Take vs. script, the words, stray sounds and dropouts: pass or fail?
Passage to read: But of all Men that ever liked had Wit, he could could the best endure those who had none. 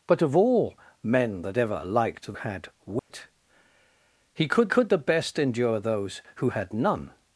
fail